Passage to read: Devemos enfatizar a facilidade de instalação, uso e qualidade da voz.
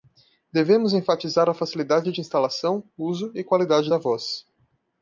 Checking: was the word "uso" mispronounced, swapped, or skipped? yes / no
no